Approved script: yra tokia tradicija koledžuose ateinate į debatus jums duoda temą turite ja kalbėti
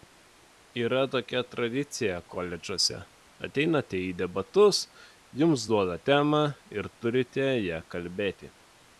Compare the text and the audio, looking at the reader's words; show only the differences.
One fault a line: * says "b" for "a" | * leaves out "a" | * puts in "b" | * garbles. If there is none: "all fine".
* puts in "ir"